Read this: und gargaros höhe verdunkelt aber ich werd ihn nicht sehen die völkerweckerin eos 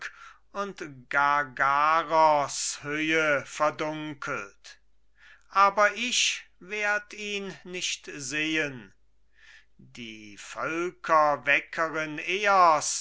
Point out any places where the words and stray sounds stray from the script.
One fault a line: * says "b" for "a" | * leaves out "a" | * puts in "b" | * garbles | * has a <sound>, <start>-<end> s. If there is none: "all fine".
all fine